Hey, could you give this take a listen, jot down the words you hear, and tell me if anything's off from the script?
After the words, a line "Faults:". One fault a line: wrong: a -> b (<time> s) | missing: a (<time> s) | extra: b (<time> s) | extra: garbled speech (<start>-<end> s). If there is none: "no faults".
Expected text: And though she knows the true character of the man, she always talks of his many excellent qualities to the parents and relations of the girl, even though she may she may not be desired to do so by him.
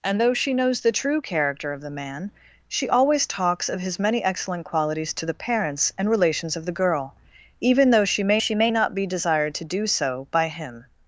And though she knows the true character of the man, she always talks of his many excellent qualities to the parents and relations of the girl, even though she may she may not be desired to do so by him.
Faults:
no faults